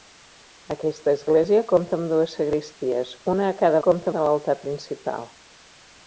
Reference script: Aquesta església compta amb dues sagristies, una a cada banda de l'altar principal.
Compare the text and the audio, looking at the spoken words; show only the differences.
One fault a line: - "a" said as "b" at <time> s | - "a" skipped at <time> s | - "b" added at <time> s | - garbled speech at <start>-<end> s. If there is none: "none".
- "banda" said as "compta" at 3.9 s